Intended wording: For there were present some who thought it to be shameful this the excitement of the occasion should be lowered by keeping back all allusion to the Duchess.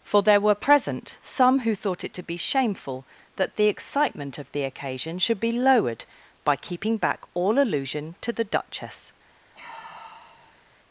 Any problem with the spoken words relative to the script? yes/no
yes